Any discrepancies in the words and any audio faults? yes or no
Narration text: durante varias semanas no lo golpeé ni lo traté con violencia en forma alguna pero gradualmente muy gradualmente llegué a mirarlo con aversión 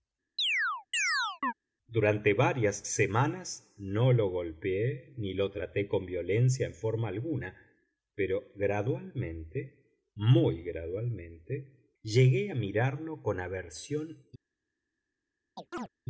yes